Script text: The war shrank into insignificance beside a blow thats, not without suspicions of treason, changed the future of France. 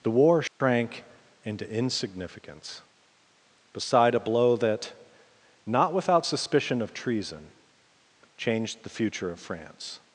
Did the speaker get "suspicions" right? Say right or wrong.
wrong